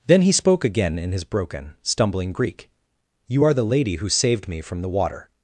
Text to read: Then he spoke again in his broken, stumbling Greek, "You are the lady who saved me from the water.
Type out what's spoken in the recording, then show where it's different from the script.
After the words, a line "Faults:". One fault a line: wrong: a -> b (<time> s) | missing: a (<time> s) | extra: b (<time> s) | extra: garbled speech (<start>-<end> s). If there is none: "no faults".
Then he spoke again in his broken, stumbling Greek, "You are the lady who saved me from the water.
Faults:
no faults